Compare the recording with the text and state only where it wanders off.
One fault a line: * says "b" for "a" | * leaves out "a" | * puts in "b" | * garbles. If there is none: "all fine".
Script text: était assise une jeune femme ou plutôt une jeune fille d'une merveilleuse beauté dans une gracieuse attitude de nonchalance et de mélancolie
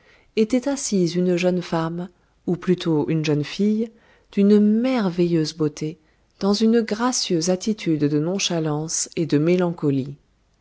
all fine